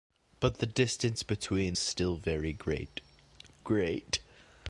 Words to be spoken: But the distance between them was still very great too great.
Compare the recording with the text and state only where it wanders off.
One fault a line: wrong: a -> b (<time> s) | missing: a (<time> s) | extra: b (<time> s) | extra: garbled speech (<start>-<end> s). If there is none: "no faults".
missing: them was (1.8 s)
missing: too (3.0 s)